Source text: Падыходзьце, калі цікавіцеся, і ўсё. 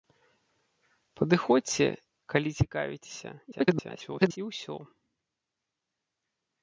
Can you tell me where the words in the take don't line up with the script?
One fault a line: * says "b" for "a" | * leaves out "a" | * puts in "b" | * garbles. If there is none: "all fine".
* garbles